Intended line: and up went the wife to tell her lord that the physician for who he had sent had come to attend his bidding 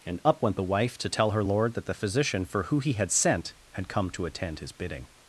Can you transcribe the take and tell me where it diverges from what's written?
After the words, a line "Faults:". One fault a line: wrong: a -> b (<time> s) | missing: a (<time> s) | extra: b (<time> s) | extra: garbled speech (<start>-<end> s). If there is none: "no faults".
and up went the wife to tell her lord that the physician for who he had sent had come to attend his bidding
Faults:
no faults